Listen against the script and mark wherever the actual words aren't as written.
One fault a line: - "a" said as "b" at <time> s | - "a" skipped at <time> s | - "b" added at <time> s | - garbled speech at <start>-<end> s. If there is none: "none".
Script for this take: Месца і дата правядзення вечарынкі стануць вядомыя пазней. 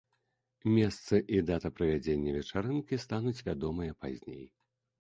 none